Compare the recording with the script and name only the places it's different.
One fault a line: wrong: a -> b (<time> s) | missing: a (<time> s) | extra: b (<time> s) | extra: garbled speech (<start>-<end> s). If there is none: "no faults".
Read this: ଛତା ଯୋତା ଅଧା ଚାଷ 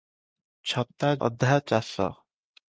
missing: ଯୋତା (1.1 s)